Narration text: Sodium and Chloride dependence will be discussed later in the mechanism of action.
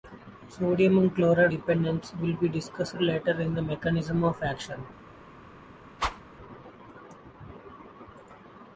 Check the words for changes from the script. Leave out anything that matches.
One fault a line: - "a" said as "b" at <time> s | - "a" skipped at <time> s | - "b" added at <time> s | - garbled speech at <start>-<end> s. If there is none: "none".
none